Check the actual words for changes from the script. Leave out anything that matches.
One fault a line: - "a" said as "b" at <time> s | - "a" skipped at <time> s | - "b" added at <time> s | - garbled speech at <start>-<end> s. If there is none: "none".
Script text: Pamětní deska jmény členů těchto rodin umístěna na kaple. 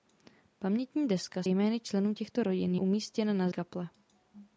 none